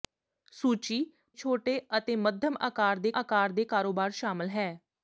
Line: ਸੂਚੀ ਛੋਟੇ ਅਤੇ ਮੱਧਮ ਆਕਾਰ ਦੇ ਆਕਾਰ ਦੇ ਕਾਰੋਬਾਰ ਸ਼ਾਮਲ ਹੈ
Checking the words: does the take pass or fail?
pass